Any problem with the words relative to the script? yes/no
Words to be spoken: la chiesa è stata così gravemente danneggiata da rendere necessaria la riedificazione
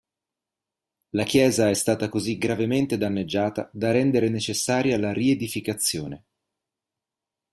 no